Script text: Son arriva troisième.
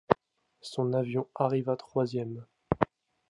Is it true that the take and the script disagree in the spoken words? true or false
true